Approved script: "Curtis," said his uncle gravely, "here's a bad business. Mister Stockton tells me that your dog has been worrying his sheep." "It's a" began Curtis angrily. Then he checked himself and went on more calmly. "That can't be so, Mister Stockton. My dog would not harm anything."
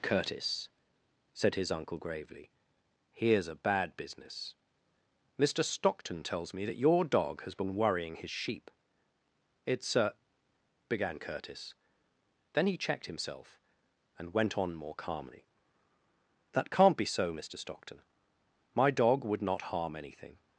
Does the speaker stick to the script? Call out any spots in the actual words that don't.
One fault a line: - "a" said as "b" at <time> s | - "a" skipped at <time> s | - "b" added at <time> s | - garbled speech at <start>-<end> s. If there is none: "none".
- "angrily" skipped at 11.7 s